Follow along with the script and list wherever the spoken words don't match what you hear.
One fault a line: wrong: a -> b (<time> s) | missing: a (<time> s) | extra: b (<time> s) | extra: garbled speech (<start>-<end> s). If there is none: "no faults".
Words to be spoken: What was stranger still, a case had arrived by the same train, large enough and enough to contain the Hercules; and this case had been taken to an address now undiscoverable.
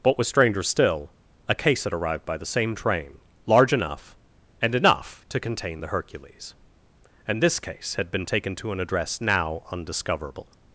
no faults